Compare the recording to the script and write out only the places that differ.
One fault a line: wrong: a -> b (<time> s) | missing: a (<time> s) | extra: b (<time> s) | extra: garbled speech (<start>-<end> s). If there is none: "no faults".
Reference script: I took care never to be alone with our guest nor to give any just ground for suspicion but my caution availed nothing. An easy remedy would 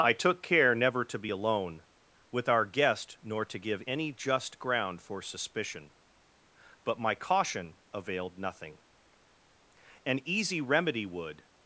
no faults